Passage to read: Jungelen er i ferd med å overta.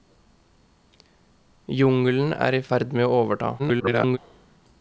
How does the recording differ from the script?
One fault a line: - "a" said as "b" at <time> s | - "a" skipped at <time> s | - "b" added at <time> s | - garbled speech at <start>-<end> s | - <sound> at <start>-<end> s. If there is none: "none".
- garbled speech at 3.6-4.2 s